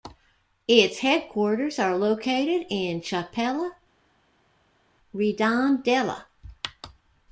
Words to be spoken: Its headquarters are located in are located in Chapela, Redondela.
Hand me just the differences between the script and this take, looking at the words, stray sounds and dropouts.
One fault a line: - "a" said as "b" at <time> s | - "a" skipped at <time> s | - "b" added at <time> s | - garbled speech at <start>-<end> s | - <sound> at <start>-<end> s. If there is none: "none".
- "are located in" skipped at 3.0 s